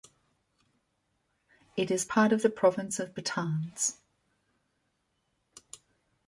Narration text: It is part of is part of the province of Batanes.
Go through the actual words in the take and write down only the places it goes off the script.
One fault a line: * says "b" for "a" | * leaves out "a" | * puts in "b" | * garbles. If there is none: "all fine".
* leaves out "is part of"